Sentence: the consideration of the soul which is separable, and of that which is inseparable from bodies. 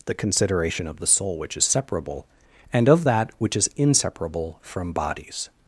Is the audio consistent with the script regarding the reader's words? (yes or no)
yes